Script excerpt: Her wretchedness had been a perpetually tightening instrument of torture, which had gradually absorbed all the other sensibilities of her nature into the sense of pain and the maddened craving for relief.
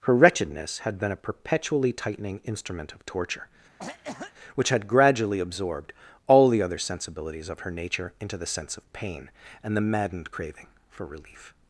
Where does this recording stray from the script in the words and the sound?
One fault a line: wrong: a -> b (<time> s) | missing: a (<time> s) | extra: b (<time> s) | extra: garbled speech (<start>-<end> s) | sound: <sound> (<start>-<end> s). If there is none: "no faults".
sound: cough (3.8-4.3 s)